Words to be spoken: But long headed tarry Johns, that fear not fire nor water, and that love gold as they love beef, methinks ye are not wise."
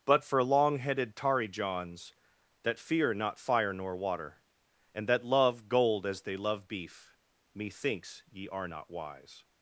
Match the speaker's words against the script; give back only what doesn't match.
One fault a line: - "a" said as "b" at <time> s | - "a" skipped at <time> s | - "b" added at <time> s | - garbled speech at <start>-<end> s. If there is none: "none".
- "for" added at 0.2 s